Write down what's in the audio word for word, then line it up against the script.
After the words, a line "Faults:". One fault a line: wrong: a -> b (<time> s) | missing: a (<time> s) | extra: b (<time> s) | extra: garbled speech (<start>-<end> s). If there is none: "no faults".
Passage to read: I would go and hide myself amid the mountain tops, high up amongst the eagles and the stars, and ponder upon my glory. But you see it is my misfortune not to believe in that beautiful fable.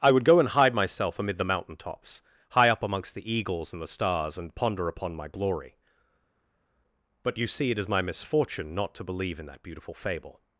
I would go and hide myself amid the mountain tops, high up amongst the eagles and the stars, and ponder upon my glory. But you see it is my misfortune not to believe in that beautiful fable.
Faults:
no faults